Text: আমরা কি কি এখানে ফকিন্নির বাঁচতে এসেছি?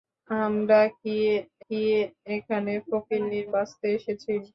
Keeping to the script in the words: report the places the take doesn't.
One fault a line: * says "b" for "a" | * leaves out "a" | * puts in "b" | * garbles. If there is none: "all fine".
all fine